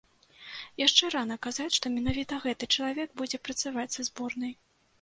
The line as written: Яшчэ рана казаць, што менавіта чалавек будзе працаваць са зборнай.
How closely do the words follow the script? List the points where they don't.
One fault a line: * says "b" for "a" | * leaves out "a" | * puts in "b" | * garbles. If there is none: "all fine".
* puts in "гэты"